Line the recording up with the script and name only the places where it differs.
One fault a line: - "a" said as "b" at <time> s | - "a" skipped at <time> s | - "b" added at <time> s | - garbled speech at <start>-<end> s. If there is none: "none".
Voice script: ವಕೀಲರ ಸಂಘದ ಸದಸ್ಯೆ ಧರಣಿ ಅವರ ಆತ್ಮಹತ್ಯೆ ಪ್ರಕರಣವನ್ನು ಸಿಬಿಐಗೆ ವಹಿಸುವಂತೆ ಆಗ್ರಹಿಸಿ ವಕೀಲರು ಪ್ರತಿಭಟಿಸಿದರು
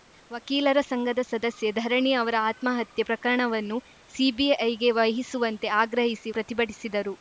- "ವಕೀಲರು" skipped at 6.3 s